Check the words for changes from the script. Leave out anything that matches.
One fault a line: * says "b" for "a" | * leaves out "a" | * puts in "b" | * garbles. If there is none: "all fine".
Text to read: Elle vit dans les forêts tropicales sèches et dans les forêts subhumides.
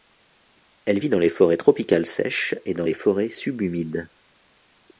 all fine